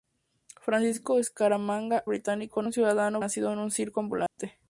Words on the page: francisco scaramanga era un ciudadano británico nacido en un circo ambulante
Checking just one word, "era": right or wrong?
wrong